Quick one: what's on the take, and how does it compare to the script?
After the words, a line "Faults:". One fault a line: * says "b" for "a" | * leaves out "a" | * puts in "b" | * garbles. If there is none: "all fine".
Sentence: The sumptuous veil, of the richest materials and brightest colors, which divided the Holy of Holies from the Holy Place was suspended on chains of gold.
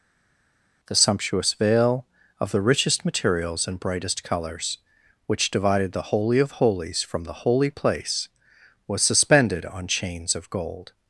The sumptuous veil, of the richest materials and brightest colors, which divided the Holy of Holies from the Holy Place was suspended on chains of gold.
Faults:
all fine